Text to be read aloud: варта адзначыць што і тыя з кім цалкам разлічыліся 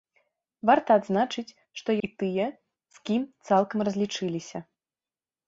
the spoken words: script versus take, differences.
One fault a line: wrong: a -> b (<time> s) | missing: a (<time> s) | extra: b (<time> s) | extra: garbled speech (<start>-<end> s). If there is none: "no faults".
no faults